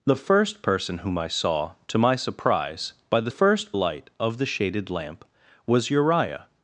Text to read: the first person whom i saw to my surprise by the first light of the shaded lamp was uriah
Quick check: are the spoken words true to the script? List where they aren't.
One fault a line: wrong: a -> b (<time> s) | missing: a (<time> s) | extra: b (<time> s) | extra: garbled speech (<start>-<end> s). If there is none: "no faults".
no faults